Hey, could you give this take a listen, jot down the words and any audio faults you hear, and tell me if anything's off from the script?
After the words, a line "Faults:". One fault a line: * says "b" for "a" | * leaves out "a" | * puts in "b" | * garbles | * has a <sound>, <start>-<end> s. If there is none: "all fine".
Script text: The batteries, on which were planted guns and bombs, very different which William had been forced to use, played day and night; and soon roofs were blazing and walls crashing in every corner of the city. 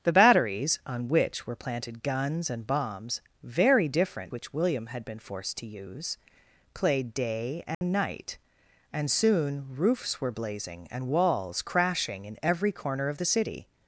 The batteries, on which were planted guns and bombs, very different which William had been forced to use, played day and night; and soon roofs were blazing and walls crashing in every corner of the city.
Faults:
* has a dropout, 7.7-7.8 s